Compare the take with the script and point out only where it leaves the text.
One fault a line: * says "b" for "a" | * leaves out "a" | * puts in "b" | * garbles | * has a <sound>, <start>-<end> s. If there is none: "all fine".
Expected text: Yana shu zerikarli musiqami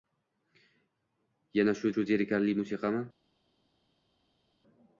* puts in "shu"